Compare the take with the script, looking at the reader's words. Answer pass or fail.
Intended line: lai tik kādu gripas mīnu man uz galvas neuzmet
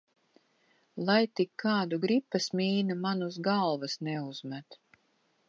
pass